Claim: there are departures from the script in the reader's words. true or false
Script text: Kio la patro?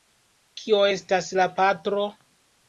true